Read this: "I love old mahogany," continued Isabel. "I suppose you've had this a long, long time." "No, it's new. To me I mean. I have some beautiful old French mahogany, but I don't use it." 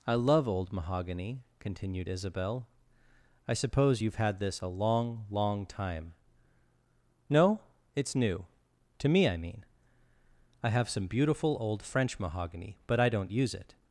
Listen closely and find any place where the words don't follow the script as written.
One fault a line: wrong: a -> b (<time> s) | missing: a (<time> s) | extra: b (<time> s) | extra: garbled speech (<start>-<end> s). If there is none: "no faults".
no faults